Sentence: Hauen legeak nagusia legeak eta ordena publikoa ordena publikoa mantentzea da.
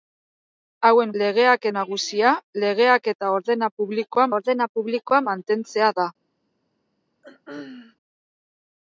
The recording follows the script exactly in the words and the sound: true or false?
false